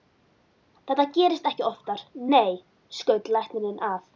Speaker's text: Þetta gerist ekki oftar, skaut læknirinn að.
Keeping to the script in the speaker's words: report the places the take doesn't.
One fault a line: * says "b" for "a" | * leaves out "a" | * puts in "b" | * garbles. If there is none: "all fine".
* puts in "nei"